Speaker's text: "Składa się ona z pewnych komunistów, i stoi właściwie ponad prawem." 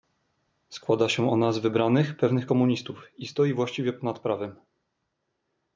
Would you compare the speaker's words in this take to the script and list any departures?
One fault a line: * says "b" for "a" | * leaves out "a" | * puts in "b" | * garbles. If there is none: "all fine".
* puts in "wybranych"